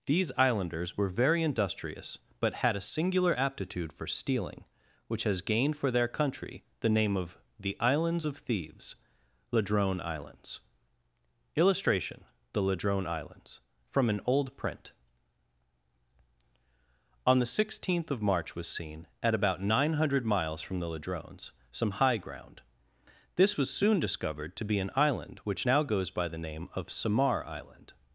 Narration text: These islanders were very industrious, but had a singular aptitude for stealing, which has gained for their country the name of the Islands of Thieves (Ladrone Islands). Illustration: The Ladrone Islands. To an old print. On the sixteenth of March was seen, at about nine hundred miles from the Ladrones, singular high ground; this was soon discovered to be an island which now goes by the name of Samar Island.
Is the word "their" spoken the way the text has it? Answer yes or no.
yes